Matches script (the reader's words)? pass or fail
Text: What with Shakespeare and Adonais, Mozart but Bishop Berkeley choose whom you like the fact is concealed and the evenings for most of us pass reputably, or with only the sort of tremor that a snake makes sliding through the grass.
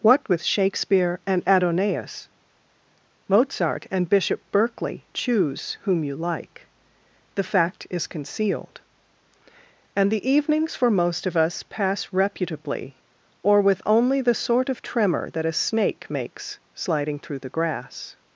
fail